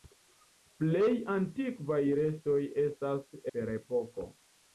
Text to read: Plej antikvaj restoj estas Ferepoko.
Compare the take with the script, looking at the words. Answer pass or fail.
pass